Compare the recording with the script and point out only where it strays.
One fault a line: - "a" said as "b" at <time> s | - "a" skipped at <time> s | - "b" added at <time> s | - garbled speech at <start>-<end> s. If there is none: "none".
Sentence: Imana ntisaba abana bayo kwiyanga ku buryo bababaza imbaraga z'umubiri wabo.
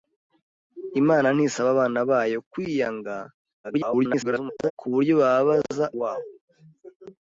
- garbled speech at 3.6-4.7 s
- "imbaraga z'umubiri" skipped at 5.8 s